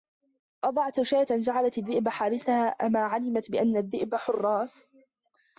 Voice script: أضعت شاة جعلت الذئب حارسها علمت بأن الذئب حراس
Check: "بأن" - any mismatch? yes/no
no